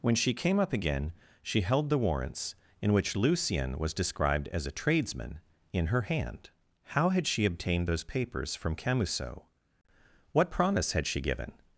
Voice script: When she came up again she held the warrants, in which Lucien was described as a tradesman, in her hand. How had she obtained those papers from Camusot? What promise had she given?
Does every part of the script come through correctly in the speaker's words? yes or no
yes